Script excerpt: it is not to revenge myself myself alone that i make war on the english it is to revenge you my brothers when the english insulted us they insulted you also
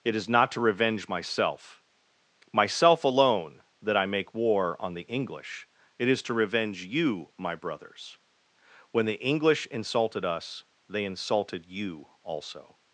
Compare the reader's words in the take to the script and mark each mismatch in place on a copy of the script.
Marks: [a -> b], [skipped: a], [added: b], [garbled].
it is not to revenge myself myself alone that i make war on the english it is to revenge you my brothers when the english insulted us they insulted you also